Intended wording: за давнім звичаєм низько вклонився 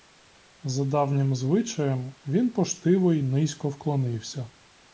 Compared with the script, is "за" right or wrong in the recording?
right